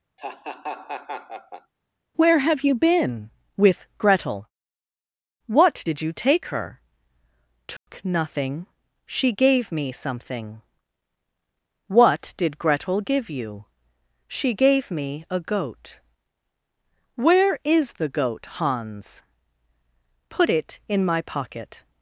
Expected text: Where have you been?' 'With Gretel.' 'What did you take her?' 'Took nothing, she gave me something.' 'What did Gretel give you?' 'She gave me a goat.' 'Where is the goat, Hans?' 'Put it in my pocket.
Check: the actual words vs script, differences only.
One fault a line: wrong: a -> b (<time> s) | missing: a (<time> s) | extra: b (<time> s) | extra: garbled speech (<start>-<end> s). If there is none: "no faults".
no faults